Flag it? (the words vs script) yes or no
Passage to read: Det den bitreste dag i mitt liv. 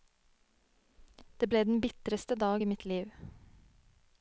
yes